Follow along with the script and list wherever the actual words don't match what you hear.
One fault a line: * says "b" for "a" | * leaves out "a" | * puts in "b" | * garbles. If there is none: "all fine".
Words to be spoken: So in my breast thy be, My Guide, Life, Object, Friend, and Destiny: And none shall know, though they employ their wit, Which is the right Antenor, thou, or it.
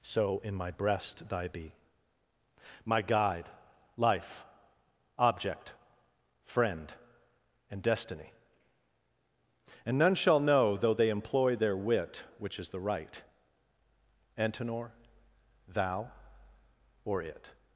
all fine